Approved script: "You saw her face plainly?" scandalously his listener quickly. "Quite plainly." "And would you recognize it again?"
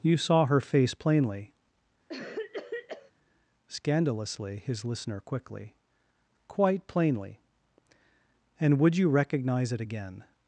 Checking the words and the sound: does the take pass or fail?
fail